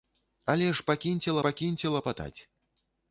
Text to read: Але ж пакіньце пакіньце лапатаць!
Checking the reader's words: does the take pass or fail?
pass